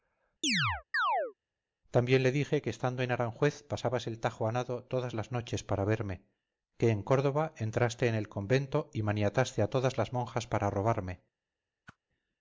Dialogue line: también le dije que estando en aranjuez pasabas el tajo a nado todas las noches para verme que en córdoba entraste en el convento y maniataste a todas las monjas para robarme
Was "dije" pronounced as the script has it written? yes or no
yes